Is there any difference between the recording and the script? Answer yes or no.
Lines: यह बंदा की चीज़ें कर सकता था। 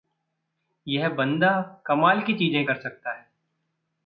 yes